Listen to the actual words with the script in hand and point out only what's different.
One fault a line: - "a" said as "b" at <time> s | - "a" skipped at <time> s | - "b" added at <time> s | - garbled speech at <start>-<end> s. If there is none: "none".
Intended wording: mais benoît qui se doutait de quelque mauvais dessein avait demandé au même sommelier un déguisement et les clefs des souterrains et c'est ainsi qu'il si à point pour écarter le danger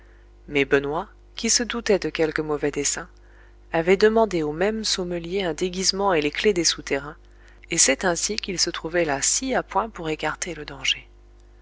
- "se trouvait là" added at 8.6 s